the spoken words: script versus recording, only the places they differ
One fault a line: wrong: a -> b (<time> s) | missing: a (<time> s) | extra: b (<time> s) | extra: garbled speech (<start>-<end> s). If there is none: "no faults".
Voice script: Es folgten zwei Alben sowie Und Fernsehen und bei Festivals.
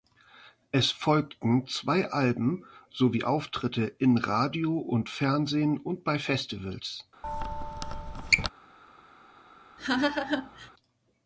extra: Auftritte in Radio (3.2 s)